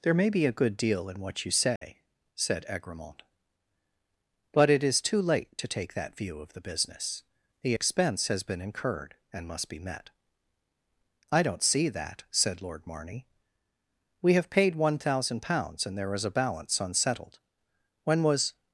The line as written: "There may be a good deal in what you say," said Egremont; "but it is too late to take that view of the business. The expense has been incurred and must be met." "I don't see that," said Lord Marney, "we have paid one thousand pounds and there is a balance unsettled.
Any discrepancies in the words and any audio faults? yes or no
yes